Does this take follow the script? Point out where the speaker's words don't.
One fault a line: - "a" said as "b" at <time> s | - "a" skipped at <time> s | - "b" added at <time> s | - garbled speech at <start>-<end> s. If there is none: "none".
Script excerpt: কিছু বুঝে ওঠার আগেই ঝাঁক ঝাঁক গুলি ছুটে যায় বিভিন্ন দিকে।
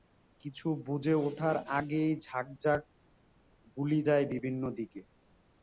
- "ছুটে" skipped at 4.0 s